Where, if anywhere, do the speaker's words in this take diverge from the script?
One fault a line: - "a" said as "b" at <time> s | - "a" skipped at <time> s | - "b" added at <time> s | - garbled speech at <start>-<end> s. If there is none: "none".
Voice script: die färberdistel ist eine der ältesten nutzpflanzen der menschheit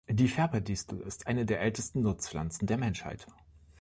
none